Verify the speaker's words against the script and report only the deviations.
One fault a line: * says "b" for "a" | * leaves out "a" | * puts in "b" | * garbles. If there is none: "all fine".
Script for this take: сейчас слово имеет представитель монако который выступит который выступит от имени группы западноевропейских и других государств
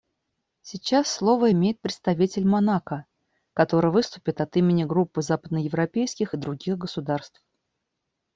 * leaves out "который выступит"